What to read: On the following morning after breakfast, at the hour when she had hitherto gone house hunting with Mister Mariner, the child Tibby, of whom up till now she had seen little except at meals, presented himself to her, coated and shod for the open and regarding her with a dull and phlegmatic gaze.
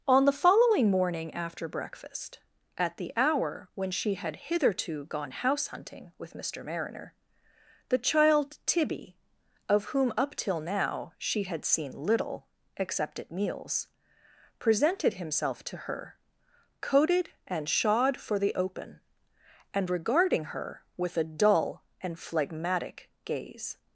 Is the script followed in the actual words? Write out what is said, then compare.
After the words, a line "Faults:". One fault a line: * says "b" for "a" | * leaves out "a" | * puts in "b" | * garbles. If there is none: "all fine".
On the following morning after breakfast, at the hour when she had hitherto gone house hunting with Mister Mariner, the child Tibby, of whom up till now she had seen little except at meals, presented himself to her, coated and shod for the open and regarding her with a dull and phlegmatic gaze.
Faults:
all fine